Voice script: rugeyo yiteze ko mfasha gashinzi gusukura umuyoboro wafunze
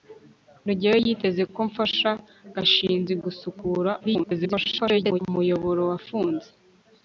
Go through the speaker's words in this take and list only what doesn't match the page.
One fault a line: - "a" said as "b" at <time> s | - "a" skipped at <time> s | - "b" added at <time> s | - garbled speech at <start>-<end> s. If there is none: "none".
- garbled speech at 4.0-5.2 s